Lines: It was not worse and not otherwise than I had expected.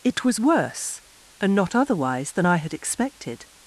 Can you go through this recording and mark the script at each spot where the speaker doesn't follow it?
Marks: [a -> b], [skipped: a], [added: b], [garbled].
It was [skipped: not] worse and not otherwise than I had expected.